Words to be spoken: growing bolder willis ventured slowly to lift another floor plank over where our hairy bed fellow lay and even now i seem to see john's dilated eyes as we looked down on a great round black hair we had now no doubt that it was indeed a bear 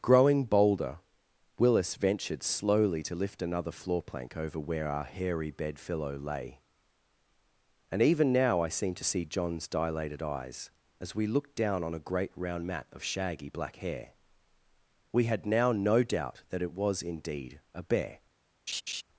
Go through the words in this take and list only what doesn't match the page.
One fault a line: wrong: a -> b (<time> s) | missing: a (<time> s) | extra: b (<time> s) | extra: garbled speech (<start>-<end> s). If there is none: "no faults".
extra: mat of shaggy (12.6 s)